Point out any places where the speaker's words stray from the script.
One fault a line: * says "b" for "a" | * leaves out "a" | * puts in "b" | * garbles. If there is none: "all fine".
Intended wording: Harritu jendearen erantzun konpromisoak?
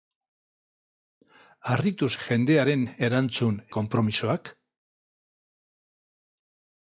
all fine